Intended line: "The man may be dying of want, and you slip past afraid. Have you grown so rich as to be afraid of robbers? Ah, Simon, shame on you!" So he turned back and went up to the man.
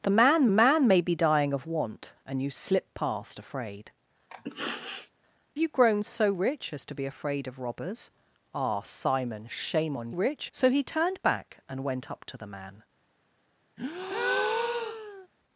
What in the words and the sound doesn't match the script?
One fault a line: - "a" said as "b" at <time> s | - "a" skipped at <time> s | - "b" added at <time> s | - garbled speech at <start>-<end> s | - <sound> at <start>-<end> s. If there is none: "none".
- "man" added at 0.5 s
- "Have" skipped at 3.9 s
- sniff at 4.3-5.1 s
- "you" said as "rich" at 10.1 s
- breath at 13.8-15.3 s